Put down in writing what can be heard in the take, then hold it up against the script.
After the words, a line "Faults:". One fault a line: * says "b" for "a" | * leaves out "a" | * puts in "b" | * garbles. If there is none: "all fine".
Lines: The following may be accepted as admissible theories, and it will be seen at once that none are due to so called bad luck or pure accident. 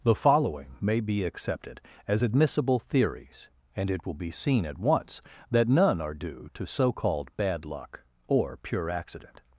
The following may be accepted as admissible theories, and it will be seen at once that none are due to so called bad luck or pure accident.
Faults:
all fine